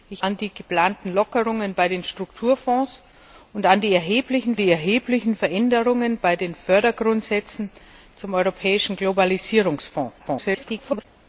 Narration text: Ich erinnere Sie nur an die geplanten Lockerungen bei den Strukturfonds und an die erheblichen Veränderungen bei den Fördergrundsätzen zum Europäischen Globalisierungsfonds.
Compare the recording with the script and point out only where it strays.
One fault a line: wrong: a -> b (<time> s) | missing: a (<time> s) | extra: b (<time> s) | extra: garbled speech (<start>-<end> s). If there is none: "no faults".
missing: erinnere Sie nur (0.2 s)
extra: die erheblichen (4.6 s)
extra: garbled speech (10.2-11.1 s)